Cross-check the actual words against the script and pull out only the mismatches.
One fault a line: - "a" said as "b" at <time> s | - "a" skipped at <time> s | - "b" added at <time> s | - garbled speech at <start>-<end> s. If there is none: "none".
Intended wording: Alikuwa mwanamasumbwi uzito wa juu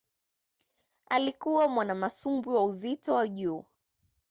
- "wa" added at 2.5 s